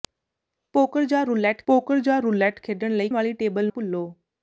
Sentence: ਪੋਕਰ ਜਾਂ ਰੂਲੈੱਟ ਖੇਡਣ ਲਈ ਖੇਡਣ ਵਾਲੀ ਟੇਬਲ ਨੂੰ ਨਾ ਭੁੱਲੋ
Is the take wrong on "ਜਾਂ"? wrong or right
right